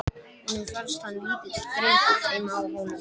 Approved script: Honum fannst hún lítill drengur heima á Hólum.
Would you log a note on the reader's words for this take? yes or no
yes